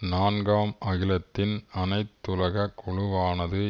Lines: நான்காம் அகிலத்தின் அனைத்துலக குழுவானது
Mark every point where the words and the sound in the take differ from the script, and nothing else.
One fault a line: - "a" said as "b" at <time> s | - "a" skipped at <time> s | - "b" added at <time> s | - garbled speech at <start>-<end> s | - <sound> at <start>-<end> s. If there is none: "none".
none